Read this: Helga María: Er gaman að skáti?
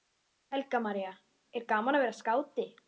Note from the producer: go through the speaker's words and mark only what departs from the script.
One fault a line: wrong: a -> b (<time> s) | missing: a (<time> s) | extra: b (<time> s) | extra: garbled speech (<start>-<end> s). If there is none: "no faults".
extra: vera (2.1 s)